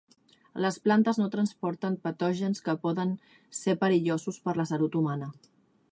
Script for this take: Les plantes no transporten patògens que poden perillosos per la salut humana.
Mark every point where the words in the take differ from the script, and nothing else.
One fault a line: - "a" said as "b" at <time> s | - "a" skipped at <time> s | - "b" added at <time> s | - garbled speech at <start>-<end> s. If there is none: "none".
- "ser" added at 3.6 s